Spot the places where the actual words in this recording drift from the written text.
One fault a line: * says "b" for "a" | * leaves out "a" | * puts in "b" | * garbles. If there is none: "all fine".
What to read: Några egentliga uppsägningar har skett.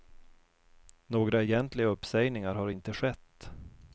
* puts in "inte"